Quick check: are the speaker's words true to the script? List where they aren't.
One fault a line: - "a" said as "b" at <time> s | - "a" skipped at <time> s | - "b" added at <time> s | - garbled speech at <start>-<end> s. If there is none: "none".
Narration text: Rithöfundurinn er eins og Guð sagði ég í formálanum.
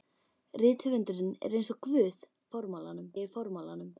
- "sagði" said as "formálanum" at 2.6 s